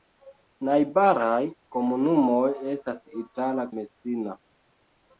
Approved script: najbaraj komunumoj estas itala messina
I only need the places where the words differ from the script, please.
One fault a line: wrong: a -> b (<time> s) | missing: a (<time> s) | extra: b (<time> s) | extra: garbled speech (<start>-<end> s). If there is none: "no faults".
no faults